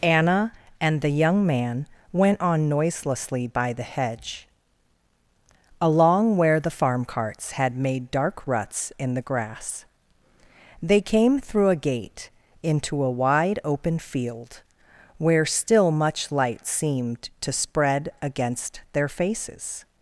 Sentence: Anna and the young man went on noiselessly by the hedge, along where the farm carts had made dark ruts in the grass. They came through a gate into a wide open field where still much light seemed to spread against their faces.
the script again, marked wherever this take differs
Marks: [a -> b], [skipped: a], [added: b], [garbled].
Anna and the young man went on noiselessly by the hedge, along where the farm carts had made dark ruts in the grass. They came through a gate into a wide open field where still much light seemed to spread against their faces.